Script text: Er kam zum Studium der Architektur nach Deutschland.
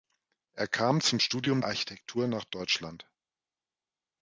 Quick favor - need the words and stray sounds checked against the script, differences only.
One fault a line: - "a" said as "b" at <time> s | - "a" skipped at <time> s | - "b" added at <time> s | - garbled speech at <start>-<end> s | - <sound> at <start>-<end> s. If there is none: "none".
- "der" skipped at 1.6 s